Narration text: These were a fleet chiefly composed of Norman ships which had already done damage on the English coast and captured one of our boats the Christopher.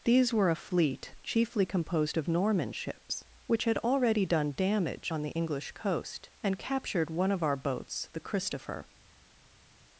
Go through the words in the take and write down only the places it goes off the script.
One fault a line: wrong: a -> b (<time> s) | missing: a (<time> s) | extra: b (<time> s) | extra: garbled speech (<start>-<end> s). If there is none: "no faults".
no faults